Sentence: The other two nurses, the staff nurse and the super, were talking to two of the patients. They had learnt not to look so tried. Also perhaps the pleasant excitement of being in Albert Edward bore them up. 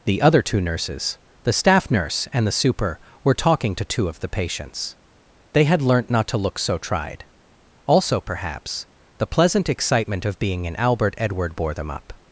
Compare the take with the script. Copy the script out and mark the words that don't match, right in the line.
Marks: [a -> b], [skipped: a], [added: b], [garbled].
The other two nurses, the staff nurse and the super, were talking to two of the patients. They had learnt not to look so tried. Also perhaps the pleasant excitement of being in Albert Edward bore them up.